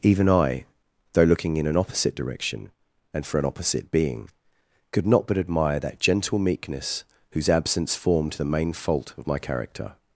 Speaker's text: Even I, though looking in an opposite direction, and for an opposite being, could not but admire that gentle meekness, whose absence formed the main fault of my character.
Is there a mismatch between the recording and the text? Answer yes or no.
no